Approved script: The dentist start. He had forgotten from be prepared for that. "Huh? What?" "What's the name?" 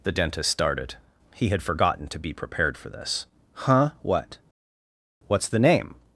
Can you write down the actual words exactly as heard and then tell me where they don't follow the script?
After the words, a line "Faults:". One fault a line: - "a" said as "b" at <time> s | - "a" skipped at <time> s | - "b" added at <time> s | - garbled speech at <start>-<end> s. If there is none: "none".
The dentist started. He had forgotten to be prepared for this. "Huh? What?" "What's the name?"
Faults:
- "start" said as "started" at 0.5 s
- "from" said as "to" at 2.1 s
- "that" said as "this" at 2.9 s